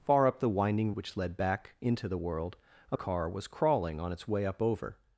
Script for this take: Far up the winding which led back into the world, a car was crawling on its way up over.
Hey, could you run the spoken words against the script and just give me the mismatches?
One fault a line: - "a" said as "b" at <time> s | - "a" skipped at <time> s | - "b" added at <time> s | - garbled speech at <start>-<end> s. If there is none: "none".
none